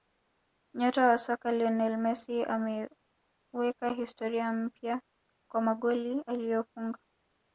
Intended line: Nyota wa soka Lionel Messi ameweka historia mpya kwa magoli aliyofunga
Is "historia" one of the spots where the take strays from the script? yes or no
no